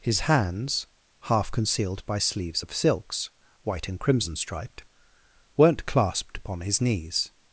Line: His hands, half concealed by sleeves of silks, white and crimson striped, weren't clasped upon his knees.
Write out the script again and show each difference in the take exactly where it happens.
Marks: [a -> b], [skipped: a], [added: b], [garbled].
His hands, half concealed by sleeves of silks, white and crimson striped, weren't clasped upon his knees.